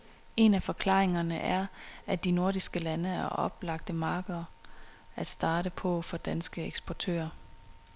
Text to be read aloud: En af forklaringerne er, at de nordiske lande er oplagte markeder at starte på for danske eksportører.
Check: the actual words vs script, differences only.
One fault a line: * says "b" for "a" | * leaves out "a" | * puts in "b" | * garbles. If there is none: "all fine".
all fine